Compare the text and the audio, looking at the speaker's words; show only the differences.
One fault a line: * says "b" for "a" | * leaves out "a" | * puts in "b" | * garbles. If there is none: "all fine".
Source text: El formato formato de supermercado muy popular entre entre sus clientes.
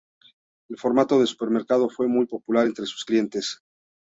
* leaves out "formato"
* puts in "fue"
* leaves out "entre"